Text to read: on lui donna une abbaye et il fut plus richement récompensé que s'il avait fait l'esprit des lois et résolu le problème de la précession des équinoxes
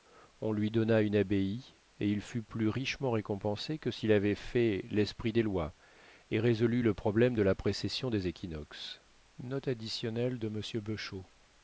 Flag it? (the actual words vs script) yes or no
no